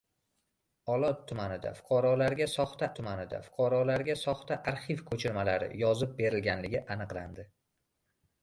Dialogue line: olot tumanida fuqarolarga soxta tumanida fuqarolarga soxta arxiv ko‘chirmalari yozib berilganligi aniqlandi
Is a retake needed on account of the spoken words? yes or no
no